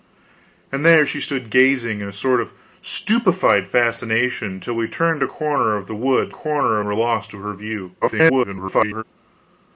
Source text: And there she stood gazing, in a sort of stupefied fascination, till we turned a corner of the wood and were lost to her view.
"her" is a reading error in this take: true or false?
false